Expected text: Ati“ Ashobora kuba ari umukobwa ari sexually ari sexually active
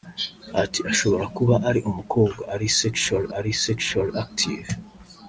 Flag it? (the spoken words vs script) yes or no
no